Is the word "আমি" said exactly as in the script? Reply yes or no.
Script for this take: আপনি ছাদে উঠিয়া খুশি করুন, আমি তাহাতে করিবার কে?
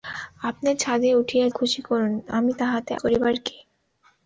yes